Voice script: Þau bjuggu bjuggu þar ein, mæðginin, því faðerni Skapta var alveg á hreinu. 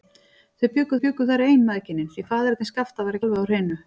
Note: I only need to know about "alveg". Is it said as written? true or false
true